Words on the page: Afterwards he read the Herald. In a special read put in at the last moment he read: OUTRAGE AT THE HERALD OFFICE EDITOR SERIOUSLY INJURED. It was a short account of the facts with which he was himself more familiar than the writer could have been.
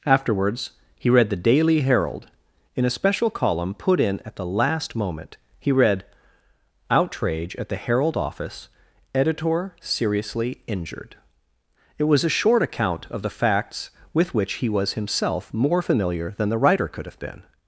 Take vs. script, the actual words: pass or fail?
fail